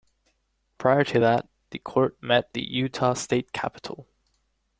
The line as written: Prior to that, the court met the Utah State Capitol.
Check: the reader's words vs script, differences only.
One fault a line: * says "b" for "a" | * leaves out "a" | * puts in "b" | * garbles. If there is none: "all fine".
all fine